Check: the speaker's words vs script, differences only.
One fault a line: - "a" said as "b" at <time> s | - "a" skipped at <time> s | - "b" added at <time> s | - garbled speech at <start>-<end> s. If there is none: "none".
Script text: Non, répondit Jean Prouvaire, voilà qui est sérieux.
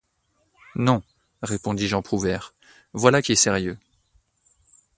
none